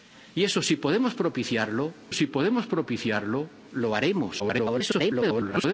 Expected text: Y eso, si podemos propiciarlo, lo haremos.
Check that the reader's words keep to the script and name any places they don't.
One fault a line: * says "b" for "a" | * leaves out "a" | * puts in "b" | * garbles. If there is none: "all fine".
* puts in "si podemos propiciarlo"
* garbles